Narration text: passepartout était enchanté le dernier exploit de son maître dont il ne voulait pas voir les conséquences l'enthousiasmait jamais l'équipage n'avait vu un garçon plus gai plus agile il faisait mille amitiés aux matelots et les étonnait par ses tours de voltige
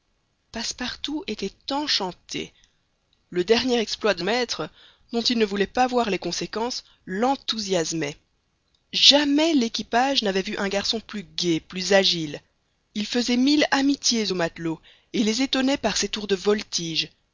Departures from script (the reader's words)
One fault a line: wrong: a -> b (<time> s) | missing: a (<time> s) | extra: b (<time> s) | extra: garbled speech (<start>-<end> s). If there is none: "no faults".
missing: son (4.2 s)